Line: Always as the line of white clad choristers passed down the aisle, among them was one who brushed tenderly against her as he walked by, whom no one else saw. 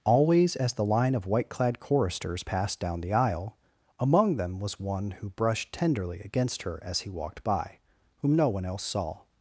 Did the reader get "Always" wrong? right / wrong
right